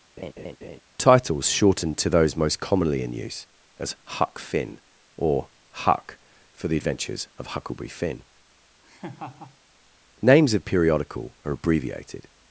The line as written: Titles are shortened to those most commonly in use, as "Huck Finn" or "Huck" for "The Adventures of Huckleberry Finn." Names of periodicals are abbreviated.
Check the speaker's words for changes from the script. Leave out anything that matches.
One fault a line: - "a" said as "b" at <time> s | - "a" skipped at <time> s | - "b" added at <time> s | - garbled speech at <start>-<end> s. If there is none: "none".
- "are" skipped at 1.5 s
- "periodicals" said as "periodical" at 10.6 s